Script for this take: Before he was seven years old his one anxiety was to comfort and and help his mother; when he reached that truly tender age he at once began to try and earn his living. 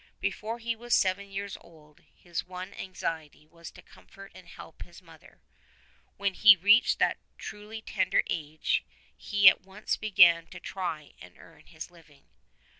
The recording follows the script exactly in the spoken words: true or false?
false